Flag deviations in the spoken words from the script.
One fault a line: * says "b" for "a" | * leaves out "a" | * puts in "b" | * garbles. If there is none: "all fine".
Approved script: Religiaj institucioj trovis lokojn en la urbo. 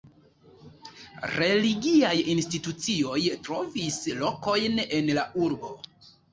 all fine